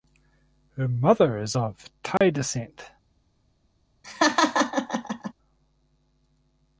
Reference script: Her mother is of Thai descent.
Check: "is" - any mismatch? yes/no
no